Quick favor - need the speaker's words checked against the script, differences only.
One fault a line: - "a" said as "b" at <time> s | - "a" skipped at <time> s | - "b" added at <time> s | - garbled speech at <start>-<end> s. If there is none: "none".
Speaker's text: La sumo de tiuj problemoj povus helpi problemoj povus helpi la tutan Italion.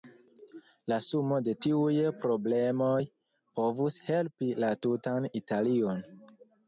- "problemoj povus helpi" skipped at 4.5 s